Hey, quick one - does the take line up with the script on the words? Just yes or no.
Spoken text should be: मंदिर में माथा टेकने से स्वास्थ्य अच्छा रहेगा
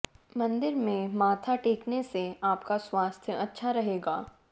no